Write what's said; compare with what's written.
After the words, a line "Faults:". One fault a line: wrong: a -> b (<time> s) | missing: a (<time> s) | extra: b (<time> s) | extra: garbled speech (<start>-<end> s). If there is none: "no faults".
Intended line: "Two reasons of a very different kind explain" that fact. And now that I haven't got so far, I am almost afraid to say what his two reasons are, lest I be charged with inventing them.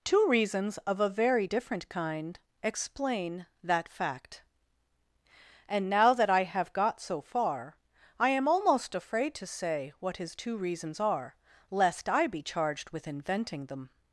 "Two reasons of a very different kind explain" that fact. And now that I have got so far, I am almost afraid to say what his two reasons are, lest I be charged with inventing them.
Faults:
wrong: haven't -> have (6.4 s)